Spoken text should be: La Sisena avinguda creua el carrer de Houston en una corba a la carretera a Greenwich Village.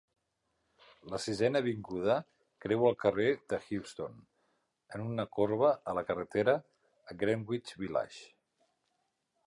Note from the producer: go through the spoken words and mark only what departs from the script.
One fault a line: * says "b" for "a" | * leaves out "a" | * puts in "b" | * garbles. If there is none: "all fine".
all fine